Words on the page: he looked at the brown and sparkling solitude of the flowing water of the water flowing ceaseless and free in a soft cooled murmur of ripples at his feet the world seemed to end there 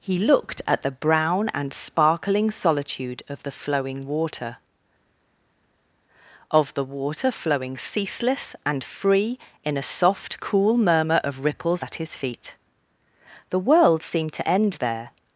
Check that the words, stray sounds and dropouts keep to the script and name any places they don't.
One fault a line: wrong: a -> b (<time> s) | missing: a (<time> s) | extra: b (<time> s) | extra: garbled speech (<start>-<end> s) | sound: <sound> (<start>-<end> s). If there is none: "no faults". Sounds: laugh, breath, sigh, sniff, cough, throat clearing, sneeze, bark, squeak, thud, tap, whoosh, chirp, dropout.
wrong: cooled -> cool (10.4 s)